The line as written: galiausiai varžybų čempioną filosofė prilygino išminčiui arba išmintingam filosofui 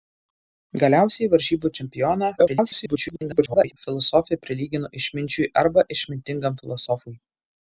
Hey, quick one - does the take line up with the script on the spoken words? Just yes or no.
no